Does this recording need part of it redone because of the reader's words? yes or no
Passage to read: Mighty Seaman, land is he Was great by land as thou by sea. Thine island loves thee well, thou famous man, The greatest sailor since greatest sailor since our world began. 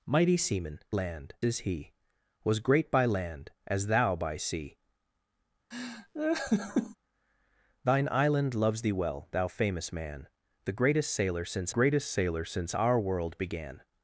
no